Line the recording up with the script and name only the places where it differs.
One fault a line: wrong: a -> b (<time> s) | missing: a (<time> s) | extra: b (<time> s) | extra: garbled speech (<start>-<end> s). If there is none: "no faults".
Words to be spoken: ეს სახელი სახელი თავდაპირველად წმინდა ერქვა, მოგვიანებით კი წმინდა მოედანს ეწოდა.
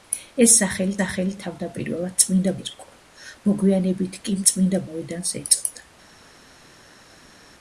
no faults